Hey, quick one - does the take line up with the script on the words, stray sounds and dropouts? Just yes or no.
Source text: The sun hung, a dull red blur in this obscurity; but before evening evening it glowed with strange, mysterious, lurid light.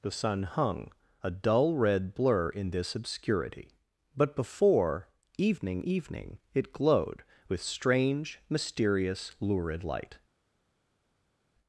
yes